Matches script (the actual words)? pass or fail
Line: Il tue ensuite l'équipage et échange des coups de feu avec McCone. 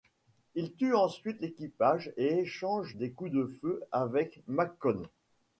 pass